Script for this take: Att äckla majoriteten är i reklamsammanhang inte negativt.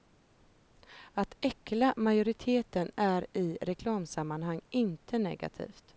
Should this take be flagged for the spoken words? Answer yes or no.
no